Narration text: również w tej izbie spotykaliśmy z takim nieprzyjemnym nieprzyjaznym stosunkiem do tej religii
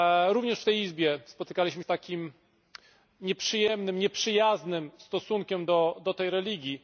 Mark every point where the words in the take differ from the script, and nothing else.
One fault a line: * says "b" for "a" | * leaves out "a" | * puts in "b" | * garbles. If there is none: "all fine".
all fine